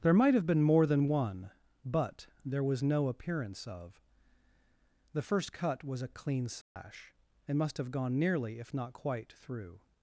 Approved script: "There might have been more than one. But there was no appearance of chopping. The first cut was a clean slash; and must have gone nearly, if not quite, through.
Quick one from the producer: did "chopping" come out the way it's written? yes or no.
no